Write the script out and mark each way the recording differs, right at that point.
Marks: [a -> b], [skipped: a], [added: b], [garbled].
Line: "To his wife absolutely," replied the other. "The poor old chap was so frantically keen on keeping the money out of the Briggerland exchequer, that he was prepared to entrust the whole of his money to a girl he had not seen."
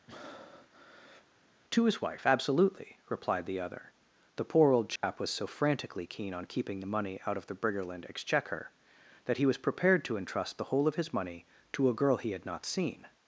"To his wife absolutely," replied the other. "The poor old chap was so frantically keen on keeping the money out of the Briggerland exchequer, that he was prepared to entrust the whole of his money to a girl he had not seen."